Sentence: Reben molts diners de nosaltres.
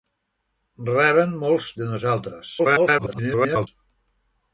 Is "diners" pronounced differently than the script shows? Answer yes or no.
yes